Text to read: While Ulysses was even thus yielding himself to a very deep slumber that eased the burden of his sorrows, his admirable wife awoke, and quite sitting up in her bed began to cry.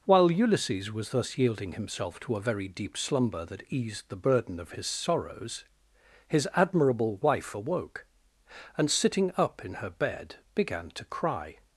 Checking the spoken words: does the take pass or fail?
fail